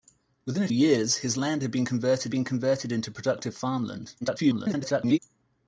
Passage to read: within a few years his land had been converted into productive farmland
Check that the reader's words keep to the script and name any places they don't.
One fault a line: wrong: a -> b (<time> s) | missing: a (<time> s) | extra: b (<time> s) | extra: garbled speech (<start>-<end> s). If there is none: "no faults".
missing: few (0.7 s)
extra: been converted (2.3 s)
extra: garbled speech (4.2-5.2 s)